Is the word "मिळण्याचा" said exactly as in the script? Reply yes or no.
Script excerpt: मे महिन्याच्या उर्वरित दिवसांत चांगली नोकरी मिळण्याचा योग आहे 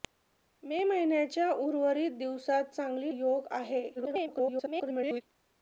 no